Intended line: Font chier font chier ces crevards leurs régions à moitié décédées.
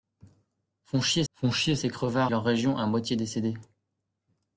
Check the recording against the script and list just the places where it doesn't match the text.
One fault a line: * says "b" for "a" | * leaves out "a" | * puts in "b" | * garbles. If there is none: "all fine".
all fine